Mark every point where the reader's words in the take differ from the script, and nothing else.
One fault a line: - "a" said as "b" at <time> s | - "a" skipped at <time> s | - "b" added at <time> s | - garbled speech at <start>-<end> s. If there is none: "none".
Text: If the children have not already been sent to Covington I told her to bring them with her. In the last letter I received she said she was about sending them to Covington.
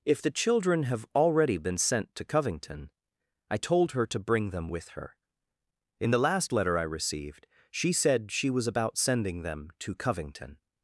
- "not" skipped at 1.1 s